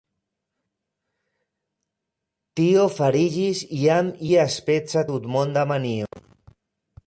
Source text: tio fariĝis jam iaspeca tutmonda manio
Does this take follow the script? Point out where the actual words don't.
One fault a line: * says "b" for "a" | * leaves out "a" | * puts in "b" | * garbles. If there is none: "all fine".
all fine